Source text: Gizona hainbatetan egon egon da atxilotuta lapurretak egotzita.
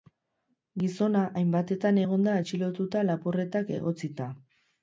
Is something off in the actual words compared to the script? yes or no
yes